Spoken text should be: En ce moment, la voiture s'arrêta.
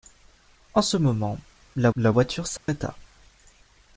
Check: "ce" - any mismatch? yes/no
no